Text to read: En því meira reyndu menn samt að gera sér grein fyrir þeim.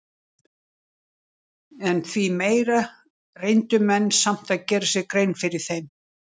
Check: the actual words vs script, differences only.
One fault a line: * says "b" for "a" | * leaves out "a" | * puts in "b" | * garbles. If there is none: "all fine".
all fine